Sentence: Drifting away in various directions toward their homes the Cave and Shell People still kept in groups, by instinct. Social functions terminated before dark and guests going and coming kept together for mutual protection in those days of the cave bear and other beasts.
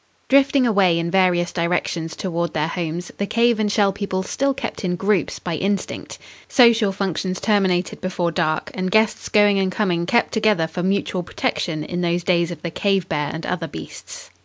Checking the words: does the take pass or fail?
pass